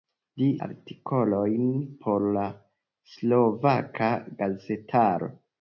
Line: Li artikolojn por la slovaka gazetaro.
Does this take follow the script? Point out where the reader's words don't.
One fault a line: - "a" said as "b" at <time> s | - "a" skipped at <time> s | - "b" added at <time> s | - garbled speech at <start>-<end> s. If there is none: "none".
none